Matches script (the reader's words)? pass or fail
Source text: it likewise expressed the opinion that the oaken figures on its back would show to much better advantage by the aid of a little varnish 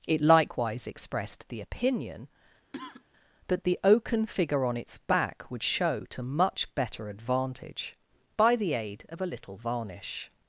fail